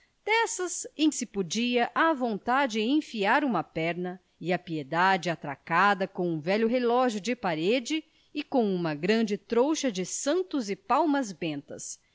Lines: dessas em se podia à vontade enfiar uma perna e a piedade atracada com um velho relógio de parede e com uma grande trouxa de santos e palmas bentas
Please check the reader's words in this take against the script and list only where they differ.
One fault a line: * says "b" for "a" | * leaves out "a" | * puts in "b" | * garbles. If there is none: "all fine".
all fine